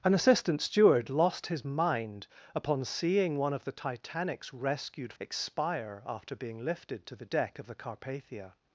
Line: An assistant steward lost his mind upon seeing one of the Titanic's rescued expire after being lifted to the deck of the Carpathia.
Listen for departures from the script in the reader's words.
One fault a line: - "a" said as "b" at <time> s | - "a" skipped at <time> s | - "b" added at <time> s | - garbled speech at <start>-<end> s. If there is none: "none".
none